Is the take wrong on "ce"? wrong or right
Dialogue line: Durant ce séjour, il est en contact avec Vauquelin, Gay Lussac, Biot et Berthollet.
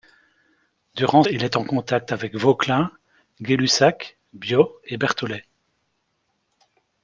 wrong